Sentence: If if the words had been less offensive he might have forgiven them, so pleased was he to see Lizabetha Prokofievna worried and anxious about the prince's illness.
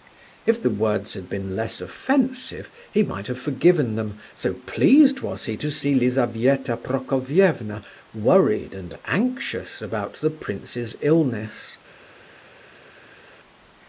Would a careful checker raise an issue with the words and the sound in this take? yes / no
yes